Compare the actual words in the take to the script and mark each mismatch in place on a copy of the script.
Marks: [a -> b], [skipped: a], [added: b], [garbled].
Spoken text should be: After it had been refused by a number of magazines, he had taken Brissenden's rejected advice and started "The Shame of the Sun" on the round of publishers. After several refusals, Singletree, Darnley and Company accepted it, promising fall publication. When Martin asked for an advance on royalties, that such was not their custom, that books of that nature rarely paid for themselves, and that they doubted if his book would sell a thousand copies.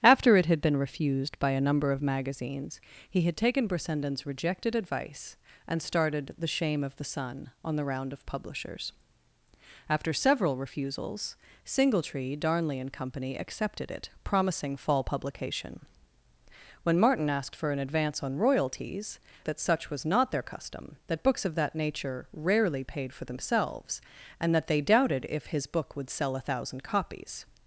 After it had been refused by a number of magazines, he had taken Brissenden's rejected advice and started "The Shame of the Sun" on the round of publishers. After several refusals, Singletree, Darnley and Company accepted it, promising fall publication. When Martin asked for an advance on royalties, that such was not their custom, that books of that nature rarely paid for themselves, and that they doubted if his book would sell a thousand copies.